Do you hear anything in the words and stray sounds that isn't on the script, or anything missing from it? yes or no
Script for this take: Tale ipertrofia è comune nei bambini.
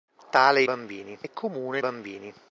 yes